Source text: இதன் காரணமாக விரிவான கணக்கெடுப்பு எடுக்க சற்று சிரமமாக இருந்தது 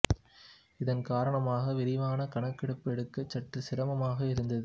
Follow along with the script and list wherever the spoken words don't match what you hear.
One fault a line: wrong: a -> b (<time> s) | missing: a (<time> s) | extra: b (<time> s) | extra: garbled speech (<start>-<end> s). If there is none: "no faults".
no faults